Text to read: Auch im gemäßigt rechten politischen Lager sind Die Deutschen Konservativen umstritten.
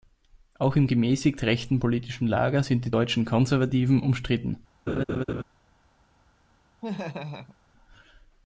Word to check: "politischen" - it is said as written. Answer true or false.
true